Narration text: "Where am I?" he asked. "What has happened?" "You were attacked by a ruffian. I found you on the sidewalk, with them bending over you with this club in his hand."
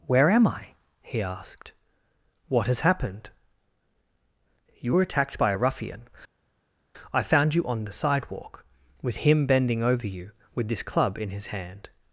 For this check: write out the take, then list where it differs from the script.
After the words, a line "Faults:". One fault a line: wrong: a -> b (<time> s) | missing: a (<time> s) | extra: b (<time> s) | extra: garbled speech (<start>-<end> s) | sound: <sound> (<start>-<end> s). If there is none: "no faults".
"Where am I?" he asked. "What has happened?" "You were attacked by a ruffian. I found you on the sidewalk, with him bending over you with this club in his hand."
Faults:
wrong: them -> him (9.2 s)